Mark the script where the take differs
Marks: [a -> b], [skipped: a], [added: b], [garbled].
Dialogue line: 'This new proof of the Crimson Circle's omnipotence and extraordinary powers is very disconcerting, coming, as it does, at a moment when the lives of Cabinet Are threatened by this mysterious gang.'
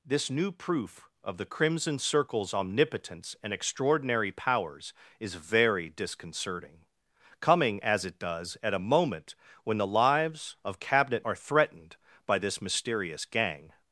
'This new proof of the Crimson Circle's omnipotence and extraordinary powers is very disconcerting, coming, as it does, at a moment when the lives of Cabinet Are threatened by this mysterious gang.'